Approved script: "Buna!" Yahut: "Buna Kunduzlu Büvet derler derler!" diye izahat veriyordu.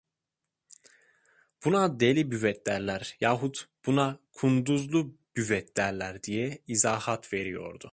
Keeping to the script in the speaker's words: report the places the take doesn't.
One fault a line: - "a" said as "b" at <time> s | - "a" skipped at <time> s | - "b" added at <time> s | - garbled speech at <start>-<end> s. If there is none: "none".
- "Deli Büvet derler" added at 2.0 s
- "derler" skipped at 6.2 s